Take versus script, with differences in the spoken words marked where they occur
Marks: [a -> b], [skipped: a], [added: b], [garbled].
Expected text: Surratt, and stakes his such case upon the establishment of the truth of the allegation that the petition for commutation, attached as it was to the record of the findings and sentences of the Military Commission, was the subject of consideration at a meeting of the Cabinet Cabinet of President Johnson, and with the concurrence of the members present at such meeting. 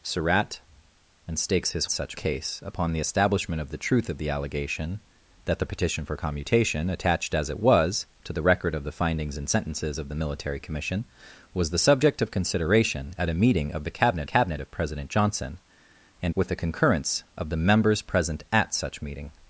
Surratt, and stakes his such case upon the establishment of the truth of the allegation that the petition for commutation, attached as it was to the record of the findings and sentences of the Military Commission, was the subject of consideration at a meeting of the Cabinet Cabinet of President Johnson, and with the concurrence of the members present at such meeting.